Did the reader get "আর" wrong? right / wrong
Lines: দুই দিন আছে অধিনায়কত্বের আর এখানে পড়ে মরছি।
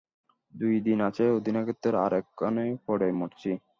right